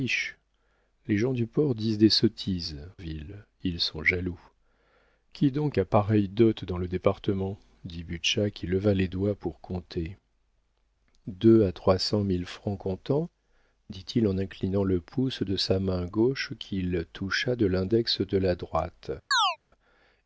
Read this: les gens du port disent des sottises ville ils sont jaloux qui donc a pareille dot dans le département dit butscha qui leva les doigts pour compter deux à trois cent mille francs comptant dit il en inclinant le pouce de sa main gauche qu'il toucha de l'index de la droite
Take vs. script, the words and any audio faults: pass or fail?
fail